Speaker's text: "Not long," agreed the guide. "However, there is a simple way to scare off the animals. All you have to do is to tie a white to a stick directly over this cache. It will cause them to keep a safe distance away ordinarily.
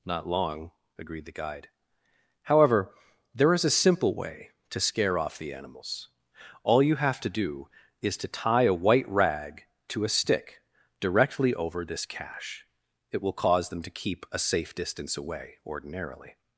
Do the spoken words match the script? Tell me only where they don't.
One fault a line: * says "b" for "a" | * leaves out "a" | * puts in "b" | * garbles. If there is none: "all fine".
* puts in "rag"